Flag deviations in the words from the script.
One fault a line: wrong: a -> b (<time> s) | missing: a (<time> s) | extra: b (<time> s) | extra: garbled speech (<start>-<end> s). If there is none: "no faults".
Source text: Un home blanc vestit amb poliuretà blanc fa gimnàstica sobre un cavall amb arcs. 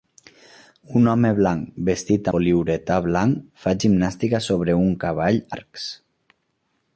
missing: amb (2.3 s)
missing: amb (5.4 s)